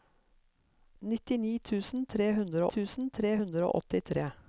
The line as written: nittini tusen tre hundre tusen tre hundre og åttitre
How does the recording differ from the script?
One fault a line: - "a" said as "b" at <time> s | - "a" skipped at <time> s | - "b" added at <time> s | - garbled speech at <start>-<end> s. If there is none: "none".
none